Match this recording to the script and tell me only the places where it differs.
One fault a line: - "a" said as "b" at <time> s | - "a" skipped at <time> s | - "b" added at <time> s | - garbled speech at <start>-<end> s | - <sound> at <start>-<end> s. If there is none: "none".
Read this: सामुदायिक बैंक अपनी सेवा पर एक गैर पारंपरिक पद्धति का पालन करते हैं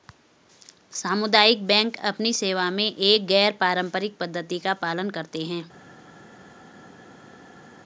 - "पर" said as "में" at 2.7 s